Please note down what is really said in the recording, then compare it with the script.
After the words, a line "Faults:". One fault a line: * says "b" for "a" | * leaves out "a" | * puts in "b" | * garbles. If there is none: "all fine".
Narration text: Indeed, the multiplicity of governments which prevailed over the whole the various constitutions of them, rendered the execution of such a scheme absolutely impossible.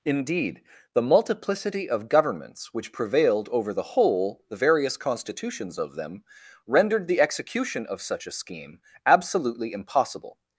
Indeed, the multiplicity of governments which prevailed over the whole the various constitutions of them, rendered the execution of such a scheme absolutely impossible.
Faults:
all fine